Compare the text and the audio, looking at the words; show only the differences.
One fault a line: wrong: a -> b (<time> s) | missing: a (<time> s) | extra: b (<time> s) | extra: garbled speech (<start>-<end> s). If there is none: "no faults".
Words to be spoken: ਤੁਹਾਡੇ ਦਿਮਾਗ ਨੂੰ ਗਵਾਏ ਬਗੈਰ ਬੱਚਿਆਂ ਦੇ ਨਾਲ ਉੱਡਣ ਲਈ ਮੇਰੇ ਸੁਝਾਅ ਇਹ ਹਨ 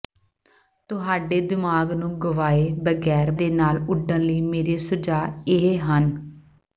missing: ਬੱਚਿਆਂ (3.3 s)